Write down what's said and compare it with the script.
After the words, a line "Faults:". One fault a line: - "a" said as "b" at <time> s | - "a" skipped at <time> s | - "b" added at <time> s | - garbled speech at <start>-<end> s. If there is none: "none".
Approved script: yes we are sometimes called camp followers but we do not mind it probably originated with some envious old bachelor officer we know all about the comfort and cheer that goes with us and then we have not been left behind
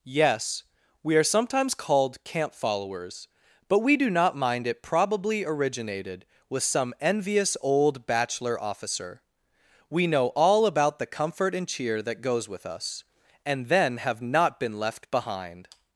yes we are sometimes called camp followers but we do not mind it probably originated with some envious old bachelor officer we know all about the comfort and cheer that goes with us and then have not been left behind
Faults:
- "we" skipped at 14.0 s